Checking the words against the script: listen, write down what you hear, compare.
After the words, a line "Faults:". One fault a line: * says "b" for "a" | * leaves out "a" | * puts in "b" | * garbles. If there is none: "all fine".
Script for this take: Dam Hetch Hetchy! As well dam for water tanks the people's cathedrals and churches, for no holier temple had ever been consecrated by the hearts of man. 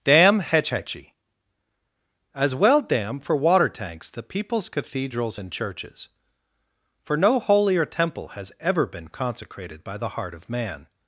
Dam Hetch Hetchy! As well dam for water tanks the people's cathedrals and churches, for no holier temple has ever been consecrated by the heart of man.
Faults:
* says "has" for "had"
* says "heart" for "hearts"